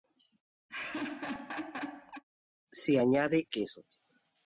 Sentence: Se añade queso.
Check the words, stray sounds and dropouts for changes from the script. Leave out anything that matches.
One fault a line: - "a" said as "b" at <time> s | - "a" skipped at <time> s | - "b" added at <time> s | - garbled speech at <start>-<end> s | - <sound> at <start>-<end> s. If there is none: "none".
- laugh at 0.7-2.2 s